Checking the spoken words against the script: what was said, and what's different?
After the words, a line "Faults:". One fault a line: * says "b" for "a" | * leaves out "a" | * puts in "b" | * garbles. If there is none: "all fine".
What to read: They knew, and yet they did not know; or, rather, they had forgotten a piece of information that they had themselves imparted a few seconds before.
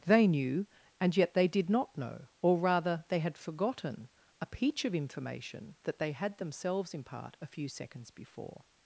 They knew, and yet they did not know; or, rather, they had forgotten a peach of information that they had themselves impart a few seconds before.
Faults:
* says "peach" for "piece"
* says "impart" for "imparted"